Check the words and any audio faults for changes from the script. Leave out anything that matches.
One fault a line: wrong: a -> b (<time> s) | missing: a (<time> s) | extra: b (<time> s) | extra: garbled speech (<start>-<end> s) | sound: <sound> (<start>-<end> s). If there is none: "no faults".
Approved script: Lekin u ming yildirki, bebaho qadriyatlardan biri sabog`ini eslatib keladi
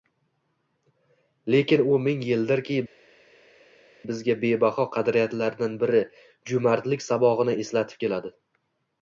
extra: bizga (4.1 s)
extra: jo`mardlik (6.5 s)